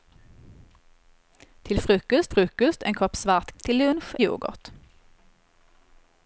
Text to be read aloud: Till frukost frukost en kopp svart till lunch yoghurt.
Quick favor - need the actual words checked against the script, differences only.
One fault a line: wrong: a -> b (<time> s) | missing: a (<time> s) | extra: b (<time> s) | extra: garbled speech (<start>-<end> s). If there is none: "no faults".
no faults